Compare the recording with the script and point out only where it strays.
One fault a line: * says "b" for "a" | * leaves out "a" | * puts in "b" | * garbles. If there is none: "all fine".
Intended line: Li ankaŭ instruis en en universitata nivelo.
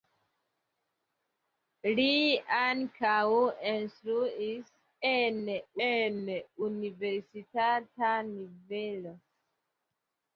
all fine